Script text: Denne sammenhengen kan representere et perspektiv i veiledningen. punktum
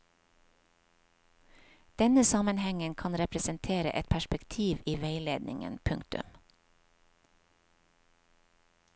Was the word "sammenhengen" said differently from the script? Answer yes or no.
no